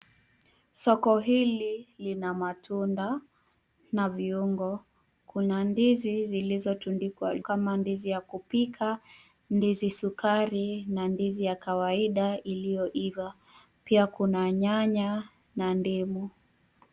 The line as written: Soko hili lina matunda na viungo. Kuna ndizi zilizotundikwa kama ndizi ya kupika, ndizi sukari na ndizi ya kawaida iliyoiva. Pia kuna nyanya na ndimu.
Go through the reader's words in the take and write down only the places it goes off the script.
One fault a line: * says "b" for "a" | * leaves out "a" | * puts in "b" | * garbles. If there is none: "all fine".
all fine